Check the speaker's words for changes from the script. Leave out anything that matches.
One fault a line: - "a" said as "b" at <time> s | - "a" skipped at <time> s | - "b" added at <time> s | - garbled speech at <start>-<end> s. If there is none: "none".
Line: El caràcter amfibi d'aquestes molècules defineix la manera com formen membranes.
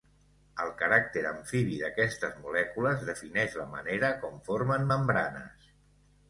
none